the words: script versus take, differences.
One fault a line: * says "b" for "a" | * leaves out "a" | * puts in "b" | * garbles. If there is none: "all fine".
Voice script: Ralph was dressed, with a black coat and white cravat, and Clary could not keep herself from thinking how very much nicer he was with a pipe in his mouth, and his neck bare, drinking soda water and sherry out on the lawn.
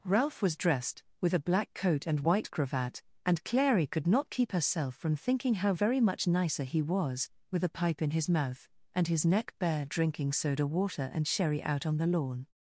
all fine